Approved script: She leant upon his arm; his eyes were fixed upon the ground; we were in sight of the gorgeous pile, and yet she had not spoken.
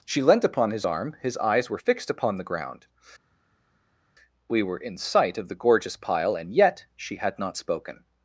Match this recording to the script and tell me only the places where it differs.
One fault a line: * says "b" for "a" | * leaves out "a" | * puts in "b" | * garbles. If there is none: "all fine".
all fine